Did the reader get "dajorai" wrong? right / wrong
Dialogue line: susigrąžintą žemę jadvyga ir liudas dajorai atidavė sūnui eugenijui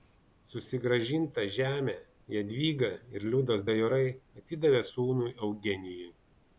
right